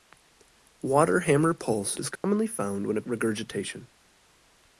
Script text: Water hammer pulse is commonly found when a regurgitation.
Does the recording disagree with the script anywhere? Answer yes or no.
no